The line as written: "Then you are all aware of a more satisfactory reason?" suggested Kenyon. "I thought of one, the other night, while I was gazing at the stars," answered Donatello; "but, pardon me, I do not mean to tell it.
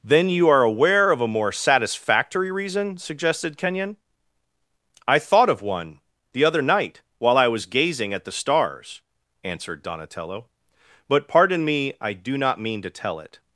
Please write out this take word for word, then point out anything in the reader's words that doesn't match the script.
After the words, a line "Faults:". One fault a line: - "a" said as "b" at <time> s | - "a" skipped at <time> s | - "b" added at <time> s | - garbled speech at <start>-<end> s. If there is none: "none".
"Then you are aware of a more satisfactory reason?" suggested Kenyon. "I thought of one, the other night, while I was gazing at the stars," answered Donatello; "but, pardon me, I do not mean to tell it.
Faults:
- "all" skipped at 0.6 s